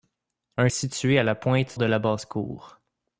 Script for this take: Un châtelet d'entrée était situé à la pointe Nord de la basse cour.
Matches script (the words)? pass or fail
fail